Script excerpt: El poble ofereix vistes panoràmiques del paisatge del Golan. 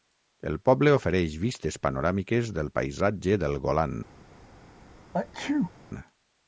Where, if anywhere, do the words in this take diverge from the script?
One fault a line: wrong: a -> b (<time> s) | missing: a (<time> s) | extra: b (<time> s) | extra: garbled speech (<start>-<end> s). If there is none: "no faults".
no faults